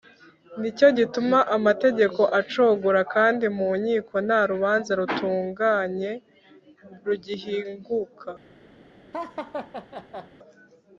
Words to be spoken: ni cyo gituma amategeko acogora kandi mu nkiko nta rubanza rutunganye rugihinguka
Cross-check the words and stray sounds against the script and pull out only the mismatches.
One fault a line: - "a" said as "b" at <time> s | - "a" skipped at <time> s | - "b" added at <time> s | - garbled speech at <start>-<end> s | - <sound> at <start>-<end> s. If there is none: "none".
- laugh at 9.1-10.3 s